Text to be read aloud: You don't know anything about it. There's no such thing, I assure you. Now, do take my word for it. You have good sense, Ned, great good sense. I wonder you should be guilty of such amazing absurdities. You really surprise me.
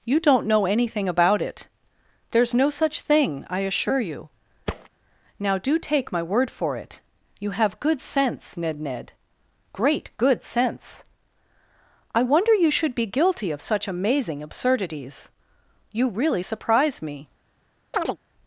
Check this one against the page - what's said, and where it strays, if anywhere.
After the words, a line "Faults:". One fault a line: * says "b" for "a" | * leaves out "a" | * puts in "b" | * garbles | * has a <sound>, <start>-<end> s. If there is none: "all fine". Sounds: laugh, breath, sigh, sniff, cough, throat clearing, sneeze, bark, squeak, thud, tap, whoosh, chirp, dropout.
You don't know anything about it. There's no such thing, I assure you. Now, do take my word for it. You have good sense, Ned Ned, great good sense. I wonder you should be guilty of such amazing absurdities. You really surprise me.
Faults:
* has a thud, 4.7-4.9 s
* puts in "Ned"
* has a chirp, 17.9-18.2 s